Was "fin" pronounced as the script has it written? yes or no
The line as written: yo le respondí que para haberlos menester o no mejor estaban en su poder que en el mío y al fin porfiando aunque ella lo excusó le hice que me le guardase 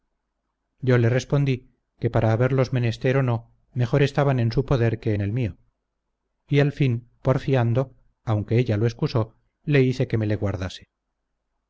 yes